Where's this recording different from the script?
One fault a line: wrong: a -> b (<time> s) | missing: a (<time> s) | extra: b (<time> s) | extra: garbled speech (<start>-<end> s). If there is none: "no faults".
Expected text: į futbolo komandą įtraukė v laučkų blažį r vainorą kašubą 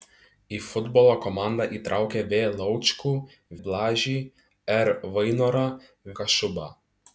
no faults